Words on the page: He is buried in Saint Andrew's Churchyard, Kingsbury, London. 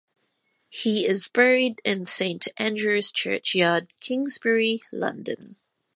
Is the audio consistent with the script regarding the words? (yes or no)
yes